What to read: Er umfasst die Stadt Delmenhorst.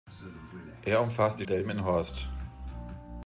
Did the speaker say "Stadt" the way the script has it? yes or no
no